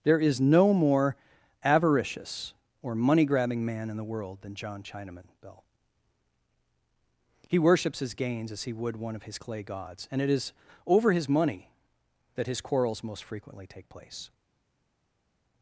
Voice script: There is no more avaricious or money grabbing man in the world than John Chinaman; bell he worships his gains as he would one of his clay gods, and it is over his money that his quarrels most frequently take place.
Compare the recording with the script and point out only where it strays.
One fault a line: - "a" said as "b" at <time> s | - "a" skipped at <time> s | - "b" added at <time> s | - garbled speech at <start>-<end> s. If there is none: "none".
none